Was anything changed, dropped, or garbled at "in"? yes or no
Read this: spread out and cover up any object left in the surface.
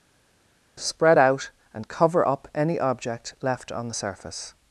yes